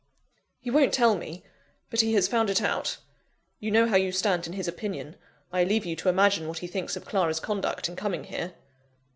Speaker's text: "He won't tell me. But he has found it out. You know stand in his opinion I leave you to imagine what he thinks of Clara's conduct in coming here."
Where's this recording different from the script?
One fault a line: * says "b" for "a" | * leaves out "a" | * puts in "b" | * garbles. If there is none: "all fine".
* puts in "how you"